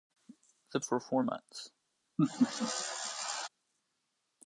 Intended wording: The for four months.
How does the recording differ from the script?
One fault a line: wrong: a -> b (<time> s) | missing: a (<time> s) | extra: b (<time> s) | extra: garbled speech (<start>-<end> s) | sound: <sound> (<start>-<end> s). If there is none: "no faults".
sound: laugh (2.2-3.5 s)